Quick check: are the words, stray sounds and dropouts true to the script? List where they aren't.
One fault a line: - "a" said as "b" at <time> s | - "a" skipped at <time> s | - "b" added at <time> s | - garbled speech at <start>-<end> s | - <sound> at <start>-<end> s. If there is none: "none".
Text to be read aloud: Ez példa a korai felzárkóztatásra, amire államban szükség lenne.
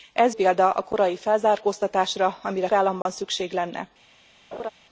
- dropout at 3.0-3.1 s
- laugh at 4.5-4.7 s